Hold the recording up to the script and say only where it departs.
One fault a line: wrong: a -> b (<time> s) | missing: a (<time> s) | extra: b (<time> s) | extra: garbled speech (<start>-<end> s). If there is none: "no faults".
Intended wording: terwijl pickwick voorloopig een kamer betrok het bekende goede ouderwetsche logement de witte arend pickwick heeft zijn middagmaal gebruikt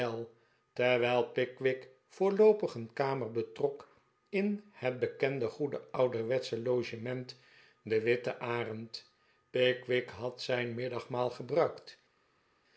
extra: in (4.3 s)
wrong: heeft -> had (10.1 s)